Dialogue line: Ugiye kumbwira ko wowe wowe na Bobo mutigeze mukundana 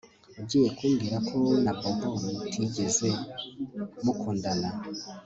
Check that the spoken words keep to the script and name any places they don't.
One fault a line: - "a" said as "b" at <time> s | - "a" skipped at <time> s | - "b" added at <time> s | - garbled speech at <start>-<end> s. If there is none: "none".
- "wowe" skipped at 1.6 s